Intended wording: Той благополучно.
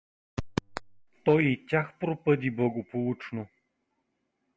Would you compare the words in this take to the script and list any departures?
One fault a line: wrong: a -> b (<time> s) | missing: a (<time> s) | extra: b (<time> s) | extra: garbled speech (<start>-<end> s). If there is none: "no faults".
extra: и тях пропъди (1.4 s)